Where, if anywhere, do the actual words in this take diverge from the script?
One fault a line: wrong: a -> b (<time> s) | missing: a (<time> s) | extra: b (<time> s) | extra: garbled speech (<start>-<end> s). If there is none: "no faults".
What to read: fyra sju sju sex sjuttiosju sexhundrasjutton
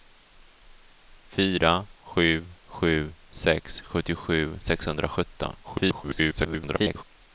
extra: garbled speech (5.6-7.0 s)